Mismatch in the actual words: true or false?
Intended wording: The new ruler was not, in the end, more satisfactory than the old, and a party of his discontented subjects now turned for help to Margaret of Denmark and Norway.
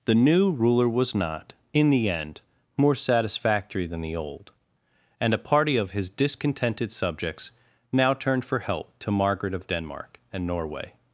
false